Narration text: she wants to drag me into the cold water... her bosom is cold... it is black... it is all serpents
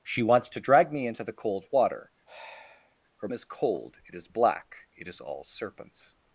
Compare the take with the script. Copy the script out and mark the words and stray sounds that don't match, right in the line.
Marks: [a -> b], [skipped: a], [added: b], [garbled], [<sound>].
she wants to drag me into the cold water... [sigh] her [skipped: bosom] is cold... it is black... it is all serpents